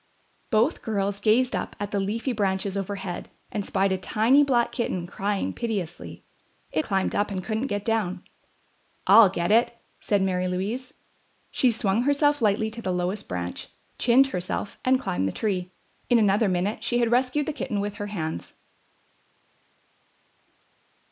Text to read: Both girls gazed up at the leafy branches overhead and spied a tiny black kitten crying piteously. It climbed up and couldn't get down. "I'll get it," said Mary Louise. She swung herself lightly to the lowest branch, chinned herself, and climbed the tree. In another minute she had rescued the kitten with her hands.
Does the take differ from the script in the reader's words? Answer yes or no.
no